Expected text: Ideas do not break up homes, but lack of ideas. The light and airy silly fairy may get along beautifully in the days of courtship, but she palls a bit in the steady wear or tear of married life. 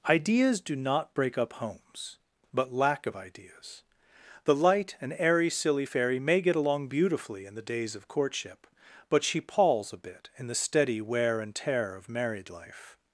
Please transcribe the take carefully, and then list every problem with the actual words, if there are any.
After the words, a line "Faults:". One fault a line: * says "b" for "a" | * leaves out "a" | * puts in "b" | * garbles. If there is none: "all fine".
Ideas do not break up homes, but lack of ideas. The light and airy silly fairy may get along beautifully in the days of courtship, but she palls a bit in the steady wear and tear of married life.
Faults:
* says "and" for "or"